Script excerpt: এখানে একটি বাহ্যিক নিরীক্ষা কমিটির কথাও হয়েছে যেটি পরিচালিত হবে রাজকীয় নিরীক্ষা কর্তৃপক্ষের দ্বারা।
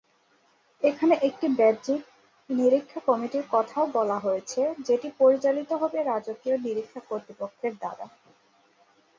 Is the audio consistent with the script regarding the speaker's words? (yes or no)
no